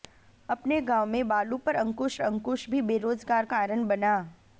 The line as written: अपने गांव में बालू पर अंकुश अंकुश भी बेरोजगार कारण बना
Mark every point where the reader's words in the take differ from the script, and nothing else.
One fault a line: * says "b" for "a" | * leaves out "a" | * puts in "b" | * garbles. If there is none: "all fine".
all fine